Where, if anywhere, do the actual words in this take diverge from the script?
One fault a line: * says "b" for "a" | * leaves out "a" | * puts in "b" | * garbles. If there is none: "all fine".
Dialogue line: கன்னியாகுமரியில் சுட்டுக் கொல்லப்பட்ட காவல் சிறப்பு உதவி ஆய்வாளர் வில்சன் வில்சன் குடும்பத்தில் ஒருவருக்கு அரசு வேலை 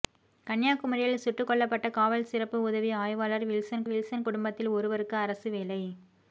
all fine